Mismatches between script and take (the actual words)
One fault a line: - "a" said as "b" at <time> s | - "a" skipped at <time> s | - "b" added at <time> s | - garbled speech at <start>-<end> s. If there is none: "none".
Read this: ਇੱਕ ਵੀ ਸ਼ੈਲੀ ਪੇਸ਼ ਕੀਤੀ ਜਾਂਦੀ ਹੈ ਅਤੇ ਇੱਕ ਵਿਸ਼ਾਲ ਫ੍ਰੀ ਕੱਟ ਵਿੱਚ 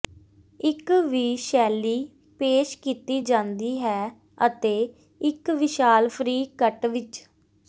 none